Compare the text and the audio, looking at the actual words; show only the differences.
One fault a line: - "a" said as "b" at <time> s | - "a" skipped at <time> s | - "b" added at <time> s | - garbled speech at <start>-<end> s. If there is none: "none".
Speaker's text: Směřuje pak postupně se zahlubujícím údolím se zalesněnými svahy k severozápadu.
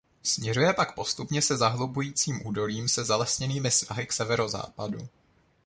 none